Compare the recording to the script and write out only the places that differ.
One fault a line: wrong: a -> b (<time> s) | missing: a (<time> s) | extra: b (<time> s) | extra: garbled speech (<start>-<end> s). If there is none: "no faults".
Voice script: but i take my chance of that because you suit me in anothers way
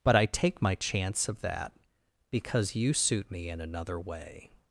wrong: anothers -> another (3.6 s)